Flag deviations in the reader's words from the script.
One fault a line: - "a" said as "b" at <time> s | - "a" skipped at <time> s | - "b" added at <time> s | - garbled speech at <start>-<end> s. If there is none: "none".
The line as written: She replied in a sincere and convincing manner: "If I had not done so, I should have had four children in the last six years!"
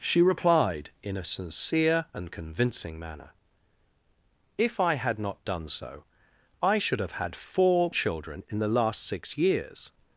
none